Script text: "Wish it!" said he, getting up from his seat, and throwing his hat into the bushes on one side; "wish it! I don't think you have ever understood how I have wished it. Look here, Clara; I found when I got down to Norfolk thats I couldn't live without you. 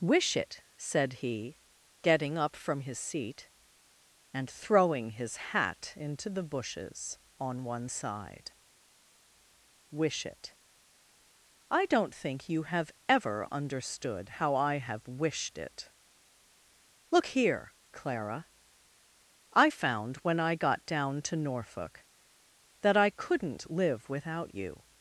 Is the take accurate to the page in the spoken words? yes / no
no